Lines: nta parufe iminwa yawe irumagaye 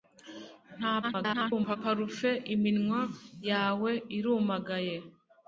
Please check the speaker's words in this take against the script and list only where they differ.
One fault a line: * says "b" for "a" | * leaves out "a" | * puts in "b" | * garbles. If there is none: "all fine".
* garbles